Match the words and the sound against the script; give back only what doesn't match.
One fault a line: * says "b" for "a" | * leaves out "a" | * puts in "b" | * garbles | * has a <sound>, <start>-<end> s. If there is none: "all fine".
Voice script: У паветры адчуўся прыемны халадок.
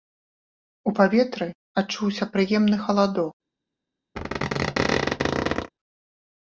* has a squeak, 4.2-5.7 s